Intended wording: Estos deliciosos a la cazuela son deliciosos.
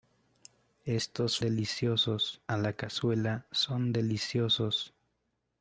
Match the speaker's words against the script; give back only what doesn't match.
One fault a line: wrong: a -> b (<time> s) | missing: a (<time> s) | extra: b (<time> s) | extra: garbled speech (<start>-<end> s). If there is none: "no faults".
no faults